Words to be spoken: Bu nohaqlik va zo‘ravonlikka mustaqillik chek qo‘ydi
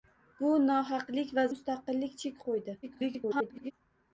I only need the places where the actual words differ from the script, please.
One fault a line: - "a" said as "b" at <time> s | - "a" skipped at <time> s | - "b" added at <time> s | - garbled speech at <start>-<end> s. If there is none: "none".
- "zo‘ravonlikka" skipped at 1.4 s
- garbled speech at 2.8-3.7 s